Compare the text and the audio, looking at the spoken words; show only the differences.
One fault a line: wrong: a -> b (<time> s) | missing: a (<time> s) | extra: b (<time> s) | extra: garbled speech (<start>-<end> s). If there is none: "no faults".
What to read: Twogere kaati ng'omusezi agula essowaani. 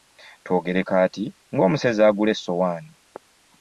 no faults